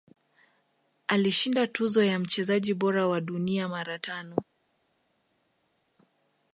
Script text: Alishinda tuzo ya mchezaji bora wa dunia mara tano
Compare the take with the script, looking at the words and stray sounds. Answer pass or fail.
pass